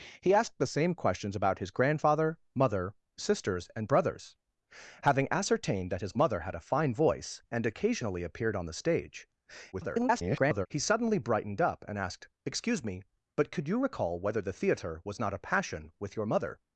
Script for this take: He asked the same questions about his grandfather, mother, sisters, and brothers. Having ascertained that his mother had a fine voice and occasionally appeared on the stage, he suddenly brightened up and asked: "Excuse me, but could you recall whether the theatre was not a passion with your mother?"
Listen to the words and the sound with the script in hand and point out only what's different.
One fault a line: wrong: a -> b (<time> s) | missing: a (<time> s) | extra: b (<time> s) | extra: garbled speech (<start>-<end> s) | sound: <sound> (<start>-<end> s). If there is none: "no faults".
extra: garbled speech (9.7-10.7 s)